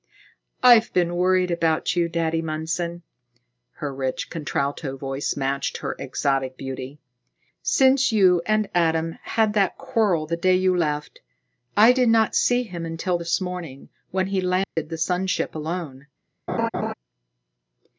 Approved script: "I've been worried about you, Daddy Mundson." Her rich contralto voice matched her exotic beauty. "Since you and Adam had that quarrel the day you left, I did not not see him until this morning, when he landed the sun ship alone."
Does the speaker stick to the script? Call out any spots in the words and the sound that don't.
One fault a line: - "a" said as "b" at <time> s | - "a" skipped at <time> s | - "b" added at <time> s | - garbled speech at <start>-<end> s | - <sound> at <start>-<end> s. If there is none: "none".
- "not" skipped at 12.3 s
- dropout at 14.6-14.8 s
- laugh at 16.5-16.9 s